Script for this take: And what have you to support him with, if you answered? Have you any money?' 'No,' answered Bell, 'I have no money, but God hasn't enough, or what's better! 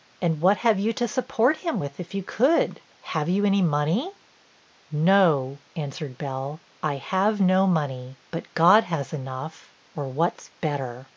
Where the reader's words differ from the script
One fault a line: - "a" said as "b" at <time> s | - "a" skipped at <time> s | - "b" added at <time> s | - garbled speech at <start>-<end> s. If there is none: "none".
- "answered" said as "could" at 2.2 s
- "hasn't" said as "has" at 8.8 s